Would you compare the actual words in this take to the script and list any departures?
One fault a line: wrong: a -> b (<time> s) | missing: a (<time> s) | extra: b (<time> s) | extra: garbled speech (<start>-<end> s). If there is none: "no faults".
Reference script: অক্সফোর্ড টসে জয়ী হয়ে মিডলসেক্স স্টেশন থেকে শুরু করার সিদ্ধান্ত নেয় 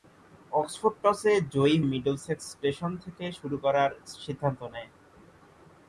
missing: হয়ে (1.8 s)